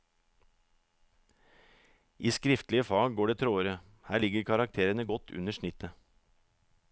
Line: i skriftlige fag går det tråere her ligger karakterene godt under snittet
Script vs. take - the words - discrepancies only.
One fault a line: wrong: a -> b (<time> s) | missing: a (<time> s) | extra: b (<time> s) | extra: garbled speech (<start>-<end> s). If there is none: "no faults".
no faults